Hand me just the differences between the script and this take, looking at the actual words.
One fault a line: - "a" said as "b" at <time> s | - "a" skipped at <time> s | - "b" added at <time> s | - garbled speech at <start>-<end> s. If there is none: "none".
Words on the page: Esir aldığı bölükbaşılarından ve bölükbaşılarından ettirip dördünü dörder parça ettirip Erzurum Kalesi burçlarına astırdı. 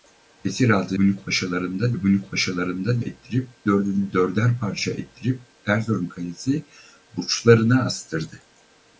none